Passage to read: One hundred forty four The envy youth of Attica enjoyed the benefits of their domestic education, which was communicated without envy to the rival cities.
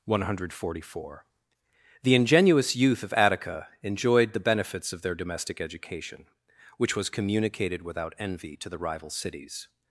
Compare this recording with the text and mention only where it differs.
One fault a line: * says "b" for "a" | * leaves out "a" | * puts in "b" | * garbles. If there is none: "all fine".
* says "ingenuous" for "envy"